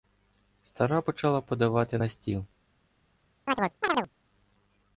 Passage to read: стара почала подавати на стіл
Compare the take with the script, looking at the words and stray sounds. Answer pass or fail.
fail